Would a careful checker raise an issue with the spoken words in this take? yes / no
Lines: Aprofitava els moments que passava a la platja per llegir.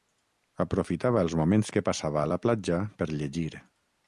no